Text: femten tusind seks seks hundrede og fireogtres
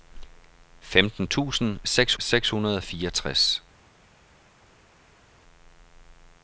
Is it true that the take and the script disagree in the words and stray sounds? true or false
false